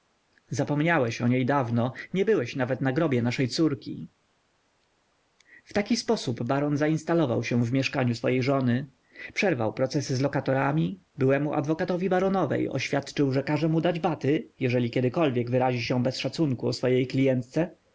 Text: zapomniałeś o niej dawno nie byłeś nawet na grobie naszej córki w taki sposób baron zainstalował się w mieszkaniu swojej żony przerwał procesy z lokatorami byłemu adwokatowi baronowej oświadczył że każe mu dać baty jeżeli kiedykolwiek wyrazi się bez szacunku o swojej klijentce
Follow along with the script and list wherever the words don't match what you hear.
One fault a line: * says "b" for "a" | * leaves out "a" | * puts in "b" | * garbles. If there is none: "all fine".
all fine